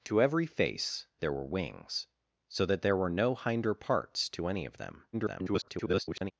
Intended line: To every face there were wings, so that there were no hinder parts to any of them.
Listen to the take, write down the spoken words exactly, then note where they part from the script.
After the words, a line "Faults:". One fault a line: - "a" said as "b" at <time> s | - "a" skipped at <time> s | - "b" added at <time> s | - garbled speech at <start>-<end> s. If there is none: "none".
To every face there were wings, so that there were no hinder parts to any of them. [garbled]
Faults:
- garbled speech at 5.1-6.3 s